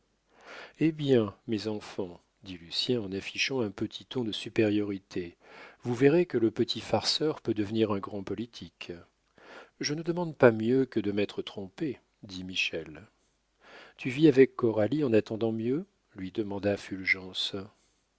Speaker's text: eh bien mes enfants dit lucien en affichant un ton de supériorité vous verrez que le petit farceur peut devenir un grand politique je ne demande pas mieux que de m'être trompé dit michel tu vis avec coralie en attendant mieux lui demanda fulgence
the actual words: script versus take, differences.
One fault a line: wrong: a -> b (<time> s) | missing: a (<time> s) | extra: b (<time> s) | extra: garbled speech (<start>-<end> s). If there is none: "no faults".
extra: petit (3.7 s)